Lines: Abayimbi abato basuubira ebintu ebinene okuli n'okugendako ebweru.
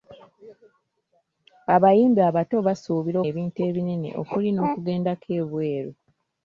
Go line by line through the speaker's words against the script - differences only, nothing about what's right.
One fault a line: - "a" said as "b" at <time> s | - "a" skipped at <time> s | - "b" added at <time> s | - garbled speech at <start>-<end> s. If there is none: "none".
none